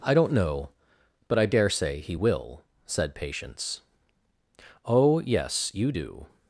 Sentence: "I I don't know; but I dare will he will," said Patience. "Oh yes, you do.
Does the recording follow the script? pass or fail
fail